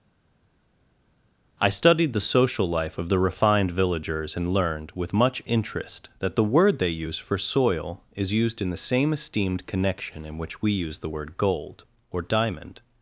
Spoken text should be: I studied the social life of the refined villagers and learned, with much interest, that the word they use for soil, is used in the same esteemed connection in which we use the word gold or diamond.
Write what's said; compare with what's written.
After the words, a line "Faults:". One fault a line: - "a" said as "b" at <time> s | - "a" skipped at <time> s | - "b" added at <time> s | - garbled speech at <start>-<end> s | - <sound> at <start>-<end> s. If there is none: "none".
I studied the social life of the refined villagers and learned, with much interest, that the word they use for soil, is used in the same esteemed connection in which we use the word gold or diamond.
Faults:
none